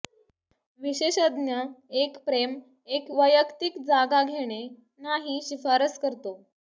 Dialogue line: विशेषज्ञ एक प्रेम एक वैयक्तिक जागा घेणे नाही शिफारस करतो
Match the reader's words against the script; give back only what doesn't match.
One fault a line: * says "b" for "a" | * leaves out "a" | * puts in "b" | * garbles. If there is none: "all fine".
all fine